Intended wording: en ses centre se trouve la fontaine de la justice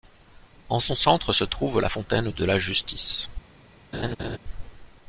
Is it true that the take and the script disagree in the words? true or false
true